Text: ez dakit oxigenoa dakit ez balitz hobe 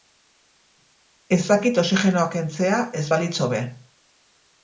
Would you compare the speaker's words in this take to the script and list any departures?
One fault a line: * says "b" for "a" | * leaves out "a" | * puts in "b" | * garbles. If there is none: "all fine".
* says "kentzea" for "dakit"